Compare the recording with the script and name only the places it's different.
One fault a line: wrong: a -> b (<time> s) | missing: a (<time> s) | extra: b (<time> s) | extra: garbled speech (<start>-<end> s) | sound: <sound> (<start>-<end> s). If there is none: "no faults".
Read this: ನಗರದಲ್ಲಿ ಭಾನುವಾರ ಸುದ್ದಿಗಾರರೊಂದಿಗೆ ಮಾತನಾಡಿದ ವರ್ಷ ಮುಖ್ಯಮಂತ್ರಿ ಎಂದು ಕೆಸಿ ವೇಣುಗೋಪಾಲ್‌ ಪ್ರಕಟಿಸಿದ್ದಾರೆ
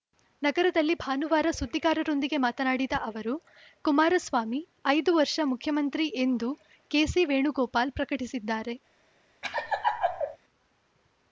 extra: ಅವರು ಕುಮಾರಸ್ವಾಮಿ ಐದು (3.0 s)
sound: laugh (9.4-10.4 s)